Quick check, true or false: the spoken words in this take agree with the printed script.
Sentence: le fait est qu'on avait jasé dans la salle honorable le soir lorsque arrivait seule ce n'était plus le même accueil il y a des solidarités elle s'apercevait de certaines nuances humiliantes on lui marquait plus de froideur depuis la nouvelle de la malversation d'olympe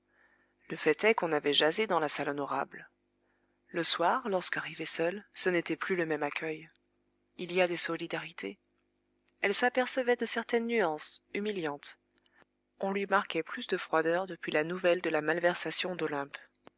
true